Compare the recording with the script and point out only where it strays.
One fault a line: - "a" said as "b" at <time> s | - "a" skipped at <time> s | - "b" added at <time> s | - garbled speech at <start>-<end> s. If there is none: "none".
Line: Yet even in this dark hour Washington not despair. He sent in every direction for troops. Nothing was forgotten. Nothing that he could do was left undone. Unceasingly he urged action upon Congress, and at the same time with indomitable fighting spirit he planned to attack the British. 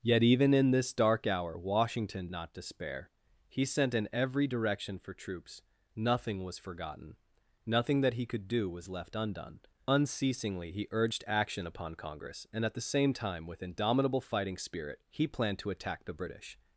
none